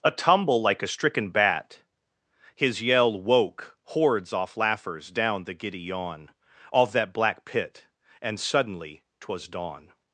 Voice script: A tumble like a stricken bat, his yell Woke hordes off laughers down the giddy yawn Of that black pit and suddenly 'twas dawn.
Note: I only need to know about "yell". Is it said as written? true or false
true